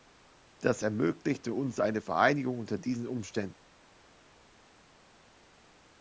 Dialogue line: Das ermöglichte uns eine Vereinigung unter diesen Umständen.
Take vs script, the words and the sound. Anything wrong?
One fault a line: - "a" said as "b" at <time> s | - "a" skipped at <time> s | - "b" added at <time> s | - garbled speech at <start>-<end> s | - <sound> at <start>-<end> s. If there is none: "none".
none